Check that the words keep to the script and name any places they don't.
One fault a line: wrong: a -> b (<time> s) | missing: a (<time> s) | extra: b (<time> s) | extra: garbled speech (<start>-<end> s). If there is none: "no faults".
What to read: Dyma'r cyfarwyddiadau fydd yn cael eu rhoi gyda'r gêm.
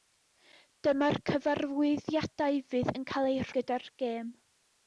missing: rhoi (3.5 s)